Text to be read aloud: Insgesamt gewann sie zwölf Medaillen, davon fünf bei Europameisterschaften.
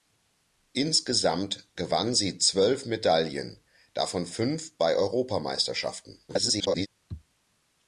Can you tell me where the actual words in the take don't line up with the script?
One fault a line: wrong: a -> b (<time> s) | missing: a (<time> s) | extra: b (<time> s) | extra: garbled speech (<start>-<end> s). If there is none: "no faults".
extra: garbled speech (6.3-6.9 s)